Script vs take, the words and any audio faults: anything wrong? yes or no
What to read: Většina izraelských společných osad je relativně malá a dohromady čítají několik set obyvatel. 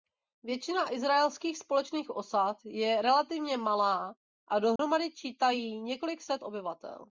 yes